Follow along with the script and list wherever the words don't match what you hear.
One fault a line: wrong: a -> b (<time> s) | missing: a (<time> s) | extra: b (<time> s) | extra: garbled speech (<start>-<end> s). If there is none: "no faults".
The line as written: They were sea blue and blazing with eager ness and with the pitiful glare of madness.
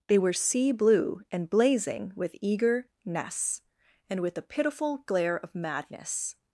no faults